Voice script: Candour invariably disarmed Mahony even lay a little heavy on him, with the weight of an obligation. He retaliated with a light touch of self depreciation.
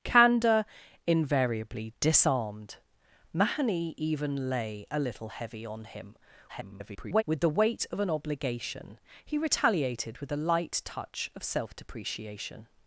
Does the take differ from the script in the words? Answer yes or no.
yes